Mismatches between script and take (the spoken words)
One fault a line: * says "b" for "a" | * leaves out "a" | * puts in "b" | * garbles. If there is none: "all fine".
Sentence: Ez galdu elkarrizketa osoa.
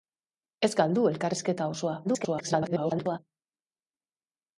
* garbles